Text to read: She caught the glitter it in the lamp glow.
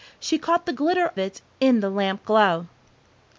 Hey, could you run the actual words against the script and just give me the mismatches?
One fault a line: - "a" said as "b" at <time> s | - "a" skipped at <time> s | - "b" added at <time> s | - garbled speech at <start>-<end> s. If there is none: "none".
none